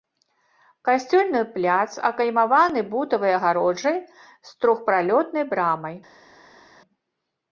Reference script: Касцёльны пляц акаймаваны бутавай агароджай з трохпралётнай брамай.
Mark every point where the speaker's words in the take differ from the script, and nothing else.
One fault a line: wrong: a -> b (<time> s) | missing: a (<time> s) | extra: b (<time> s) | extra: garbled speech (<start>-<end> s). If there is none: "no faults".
no faults